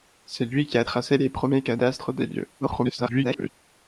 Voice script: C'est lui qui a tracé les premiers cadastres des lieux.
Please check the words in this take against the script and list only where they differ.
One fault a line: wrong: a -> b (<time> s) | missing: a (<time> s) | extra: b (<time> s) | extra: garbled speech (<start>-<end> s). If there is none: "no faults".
extra: garbled speech (2.6-3.5 s)